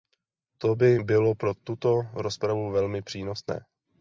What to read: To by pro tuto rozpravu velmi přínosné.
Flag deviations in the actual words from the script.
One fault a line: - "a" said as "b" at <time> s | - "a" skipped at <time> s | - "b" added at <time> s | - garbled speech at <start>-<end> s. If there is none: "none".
- "bylo" added at 1.0 s